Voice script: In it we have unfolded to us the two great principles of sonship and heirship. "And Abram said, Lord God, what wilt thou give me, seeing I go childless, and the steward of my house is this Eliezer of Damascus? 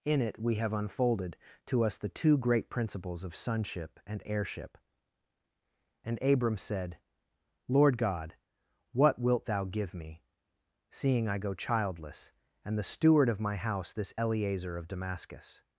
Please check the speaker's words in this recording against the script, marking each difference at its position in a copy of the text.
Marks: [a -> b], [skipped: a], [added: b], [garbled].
In it we have unfolded to us the two great principles of sonship and heirship. "And Abram said, Lord God, what wilt thou give me, seeing I go childless, and the steward of my house [skipped: is] this Eliezer of Damascus?